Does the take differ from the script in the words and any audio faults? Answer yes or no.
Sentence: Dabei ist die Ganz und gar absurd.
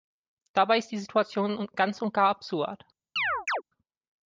yes